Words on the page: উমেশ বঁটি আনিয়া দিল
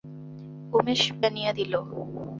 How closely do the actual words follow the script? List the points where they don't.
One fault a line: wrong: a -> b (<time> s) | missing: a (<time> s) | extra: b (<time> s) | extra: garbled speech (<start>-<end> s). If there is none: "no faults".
missing: বঁটি (1.0 s)